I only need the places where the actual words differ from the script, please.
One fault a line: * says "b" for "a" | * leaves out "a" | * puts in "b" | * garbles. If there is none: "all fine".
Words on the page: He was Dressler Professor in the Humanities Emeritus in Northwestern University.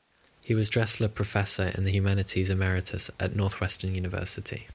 * says "at" for "in"